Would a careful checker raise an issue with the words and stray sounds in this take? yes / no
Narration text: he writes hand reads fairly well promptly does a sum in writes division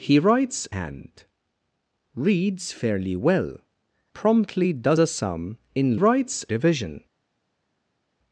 no